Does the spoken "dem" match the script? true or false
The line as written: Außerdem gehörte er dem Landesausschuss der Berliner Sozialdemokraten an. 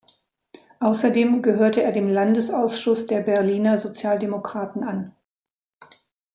true